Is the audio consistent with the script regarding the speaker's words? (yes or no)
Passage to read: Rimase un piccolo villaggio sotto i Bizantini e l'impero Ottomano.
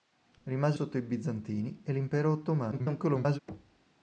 no